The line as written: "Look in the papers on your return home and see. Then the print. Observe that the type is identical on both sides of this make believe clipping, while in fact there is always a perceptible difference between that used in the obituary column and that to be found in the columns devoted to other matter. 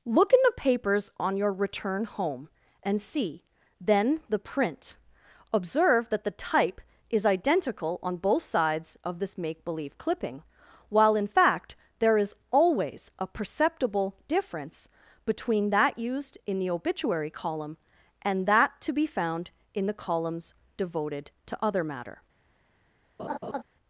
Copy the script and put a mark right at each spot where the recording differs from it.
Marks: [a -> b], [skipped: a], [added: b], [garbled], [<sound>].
"Look in the papers on your return home and see. Then the print. Observe that the type is identical on both sides of this make believe clipping, while in fact there is always a perceptible difference between that used in the obituary column and that to be found in the columns devoted to other matter. [laugh]